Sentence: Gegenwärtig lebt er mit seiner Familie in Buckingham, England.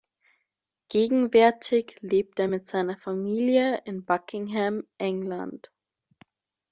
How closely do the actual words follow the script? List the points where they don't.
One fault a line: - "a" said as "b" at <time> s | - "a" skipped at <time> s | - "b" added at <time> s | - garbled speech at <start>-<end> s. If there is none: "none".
none